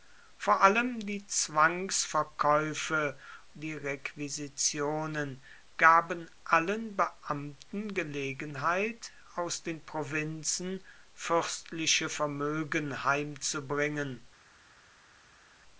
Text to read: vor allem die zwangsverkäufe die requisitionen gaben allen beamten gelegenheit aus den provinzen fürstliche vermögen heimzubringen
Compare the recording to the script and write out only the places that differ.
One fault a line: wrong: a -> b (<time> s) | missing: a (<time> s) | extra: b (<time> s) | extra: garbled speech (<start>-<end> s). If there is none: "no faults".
no faults